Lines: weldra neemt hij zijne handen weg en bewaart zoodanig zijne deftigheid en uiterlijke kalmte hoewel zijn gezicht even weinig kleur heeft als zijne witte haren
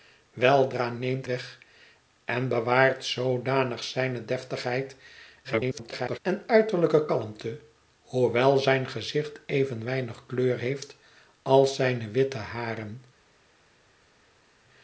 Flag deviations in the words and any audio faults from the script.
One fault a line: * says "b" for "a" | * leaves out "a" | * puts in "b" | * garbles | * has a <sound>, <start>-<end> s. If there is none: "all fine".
* leaves out "hij zijne handen"
* garbles